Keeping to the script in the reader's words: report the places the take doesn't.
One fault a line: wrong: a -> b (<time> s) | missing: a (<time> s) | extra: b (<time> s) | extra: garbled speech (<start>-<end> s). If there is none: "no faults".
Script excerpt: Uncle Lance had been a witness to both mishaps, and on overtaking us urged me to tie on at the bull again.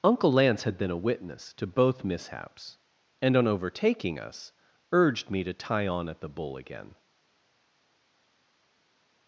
no faults